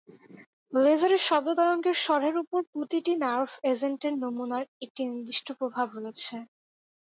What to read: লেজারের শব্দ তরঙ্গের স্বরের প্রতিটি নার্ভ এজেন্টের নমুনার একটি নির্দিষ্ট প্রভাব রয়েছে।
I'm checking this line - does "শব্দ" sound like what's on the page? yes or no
yes